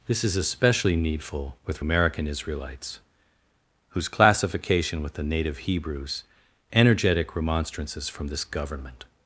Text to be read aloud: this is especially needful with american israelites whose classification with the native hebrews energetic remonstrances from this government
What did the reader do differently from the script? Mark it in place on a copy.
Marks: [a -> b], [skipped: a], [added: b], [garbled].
this is especially needful with american israelites whose classification with the native hebrews energetic remonstrances from this government